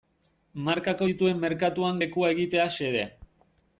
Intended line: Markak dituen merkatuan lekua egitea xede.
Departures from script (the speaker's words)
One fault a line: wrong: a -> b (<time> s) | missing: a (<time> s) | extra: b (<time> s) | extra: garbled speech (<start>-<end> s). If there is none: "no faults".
no faults